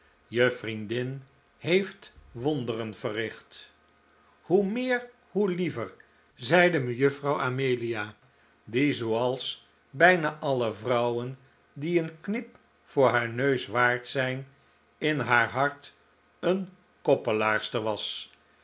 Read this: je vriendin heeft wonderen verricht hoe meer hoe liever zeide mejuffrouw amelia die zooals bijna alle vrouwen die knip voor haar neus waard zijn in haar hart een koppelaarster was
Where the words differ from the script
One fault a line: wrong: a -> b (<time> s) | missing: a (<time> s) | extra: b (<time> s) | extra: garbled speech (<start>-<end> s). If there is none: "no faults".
extra: een (12.0 s)